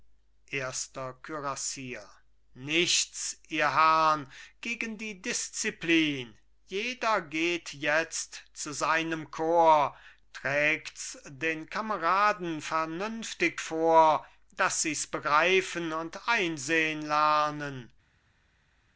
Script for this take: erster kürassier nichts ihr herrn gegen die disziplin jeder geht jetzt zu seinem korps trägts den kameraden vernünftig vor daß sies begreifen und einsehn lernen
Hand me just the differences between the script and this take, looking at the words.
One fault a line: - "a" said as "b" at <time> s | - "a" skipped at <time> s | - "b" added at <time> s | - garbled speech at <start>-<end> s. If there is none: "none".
none